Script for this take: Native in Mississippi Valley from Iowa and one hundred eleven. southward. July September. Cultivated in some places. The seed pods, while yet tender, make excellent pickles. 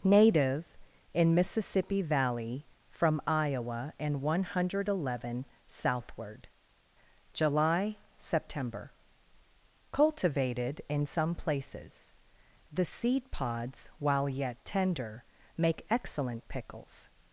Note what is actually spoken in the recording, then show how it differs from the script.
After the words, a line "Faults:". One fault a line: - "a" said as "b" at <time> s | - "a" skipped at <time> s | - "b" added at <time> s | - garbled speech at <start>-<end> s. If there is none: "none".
Native in Mississippi Valley from Iowa and one hundred eleven. southward. July September. Cultivated in some places. The seed pods, while yet tender, make excellent pickles.
Faults:
none